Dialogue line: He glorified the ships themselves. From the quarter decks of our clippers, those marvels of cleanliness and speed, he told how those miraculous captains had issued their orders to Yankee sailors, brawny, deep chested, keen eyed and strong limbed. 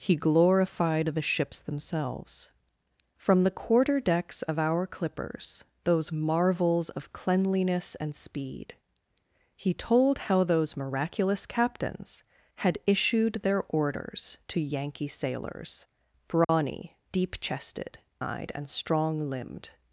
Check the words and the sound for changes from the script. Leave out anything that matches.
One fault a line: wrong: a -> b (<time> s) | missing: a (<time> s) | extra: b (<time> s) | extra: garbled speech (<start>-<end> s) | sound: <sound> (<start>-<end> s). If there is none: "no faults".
sound: dropout (16.4-16.5 s)
missing: keen (18.0 s)